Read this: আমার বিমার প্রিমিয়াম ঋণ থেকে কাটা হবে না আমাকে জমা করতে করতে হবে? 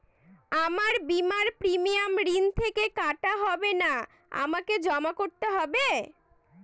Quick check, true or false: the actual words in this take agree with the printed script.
false